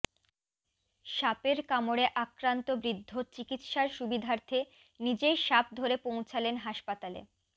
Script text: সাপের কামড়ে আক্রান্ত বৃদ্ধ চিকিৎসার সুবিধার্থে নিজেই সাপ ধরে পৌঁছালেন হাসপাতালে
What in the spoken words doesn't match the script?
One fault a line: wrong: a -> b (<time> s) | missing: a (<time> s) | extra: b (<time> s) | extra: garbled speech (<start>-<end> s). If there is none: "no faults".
no faults